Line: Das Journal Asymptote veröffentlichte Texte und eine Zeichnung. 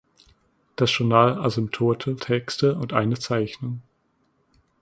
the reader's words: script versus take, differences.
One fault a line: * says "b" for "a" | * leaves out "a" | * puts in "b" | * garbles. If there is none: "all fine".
* leaves out "veröffentlichte"